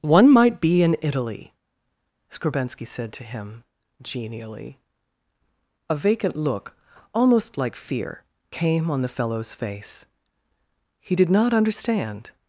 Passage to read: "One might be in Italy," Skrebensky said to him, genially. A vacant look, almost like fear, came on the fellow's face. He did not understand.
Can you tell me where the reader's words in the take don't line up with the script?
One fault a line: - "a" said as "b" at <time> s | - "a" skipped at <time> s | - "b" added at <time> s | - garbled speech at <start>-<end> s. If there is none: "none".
none